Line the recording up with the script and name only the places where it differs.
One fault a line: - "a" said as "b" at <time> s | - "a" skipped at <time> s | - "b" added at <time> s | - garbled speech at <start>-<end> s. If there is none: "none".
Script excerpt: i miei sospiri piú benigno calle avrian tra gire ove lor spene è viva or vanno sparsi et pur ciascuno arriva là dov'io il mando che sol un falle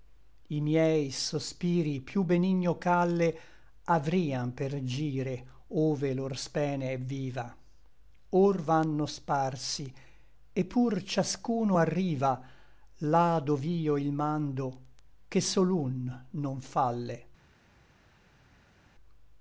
- "tra" said as "per" at 4.5 s
- "non" added at 16.3 s